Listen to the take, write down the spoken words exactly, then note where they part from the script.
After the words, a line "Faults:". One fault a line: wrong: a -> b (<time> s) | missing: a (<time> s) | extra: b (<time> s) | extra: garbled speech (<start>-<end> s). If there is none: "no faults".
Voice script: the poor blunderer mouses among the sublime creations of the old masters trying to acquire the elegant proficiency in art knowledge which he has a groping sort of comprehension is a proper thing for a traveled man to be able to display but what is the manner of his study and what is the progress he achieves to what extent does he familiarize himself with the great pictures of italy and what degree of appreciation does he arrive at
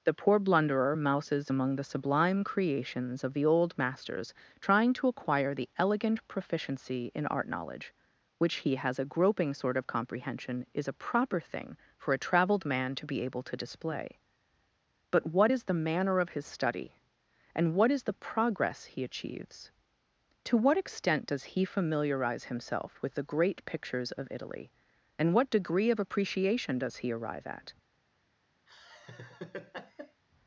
the poor blunderer mouses among the sublime creations of the old masters trying to acquire the elegant proficiency in art knowledge which he has a groping sort of comprehension is a proper thing for a traveled man to be able to display but what is the manner of his study and what is the progress he achieves to what extent does he familiarize himself with the great pictures of italy and what degree of appreciation does he arrive at
Faults:
no faults